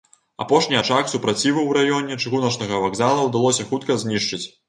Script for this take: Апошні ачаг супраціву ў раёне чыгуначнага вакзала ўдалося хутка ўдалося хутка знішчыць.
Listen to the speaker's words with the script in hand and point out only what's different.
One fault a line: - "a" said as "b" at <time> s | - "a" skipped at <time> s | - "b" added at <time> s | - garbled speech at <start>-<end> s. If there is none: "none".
- "ўдалося хутка" skipped at 4.0 s